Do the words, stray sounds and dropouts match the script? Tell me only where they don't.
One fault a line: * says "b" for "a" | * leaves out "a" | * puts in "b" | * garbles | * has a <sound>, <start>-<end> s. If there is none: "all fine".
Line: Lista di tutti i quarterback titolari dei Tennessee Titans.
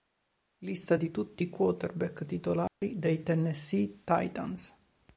* has a dropout, 2.7-2.8 s